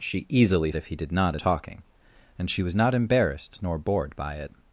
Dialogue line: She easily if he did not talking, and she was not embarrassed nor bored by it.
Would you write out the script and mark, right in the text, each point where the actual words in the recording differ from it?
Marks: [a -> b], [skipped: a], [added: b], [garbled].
She easily if he did not talking, and she was not embarrassed nor bored by it.